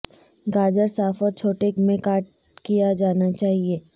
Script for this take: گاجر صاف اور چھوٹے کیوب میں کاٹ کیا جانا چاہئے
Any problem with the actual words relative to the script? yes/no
yes